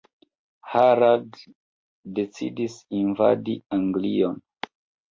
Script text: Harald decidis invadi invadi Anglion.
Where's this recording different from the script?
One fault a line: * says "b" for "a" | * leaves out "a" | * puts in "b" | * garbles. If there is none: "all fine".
* leaves out "invadi"